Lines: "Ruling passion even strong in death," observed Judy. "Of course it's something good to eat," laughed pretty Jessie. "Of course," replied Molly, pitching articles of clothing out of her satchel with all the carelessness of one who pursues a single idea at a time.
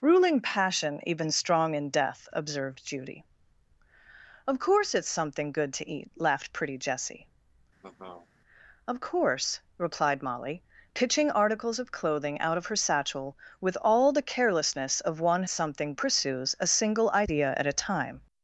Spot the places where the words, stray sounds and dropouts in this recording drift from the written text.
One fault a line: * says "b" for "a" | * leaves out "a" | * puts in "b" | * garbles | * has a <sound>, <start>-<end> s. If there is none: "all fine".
* has a laugh, 7.8-8.3 s
* says "something" for "who"